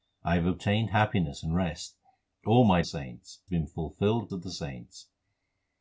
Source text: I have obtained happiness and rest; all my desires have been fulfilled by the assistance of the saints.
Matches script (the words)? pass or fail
fail